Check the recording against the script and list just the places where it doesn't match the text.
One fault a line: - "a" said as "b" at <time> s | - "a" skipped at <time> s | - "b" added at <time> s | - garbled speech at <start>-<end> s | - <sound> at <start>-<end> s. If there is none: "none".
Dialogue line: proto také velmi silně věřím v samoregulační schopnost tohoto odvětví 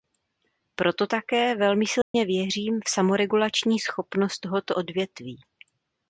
- dropout at 2.0-2.1 s